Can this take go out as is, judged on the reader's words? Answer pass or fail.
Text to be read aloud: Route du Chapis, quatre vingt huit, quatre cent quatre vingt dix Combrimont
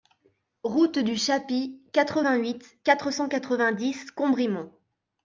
pass